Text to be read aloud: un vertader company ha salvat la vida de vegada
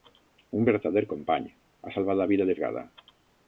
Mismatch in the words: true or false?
false